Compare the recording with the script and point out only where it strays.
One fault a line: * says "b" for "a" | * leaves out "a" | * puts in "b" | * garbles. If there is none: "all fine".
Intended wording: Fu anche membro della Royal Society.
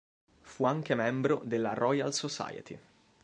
all fine